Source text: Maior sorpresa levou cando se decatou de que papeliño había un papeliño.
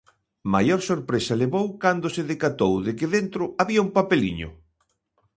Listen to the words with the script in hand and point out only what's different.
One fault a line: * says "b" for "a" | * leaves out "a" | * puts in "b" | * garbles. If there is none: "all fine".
* says "dentro" for "papeliño"